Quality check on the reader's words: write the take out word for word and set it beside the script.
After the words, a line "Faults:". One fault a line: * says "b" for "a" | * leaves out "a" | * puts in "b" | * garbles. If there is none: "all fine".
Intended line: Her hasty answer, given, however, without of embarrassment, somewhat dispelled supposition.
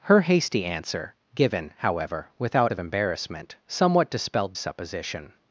Her hasty answer, given, however, without of embarrassment, somewhat dispelled supposition.
Faults:
all fine